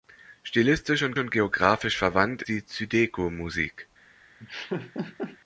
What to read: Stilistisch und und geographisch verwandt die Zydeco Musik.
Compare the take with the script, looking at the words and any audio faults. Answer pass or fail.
fail